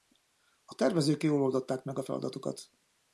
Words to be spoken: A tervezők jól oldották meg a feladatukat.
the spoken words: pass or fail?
pass